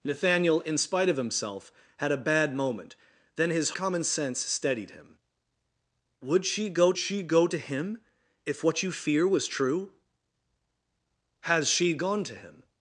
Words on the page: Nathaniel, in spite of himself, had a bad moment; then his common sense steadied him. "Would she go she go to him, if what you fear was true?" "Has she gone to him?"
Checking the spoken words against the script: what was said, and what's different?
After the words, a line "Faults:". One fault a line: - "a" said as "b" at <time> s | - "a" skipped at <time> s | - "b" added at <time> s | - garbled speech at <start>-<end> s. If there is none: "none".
Nathaniel, in spite of himself, had a bad moment; then his common sense steadied him. "Would she go she go to him, if what you fear was true?" "Has she gone to him?"
Faults:
none